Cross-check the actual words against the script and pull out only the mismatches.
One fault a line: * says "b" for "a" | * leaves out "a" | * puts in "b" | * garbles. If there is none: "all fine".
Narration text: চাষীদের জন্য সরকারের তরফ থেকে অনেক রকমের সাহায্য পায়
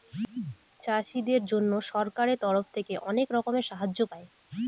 all fine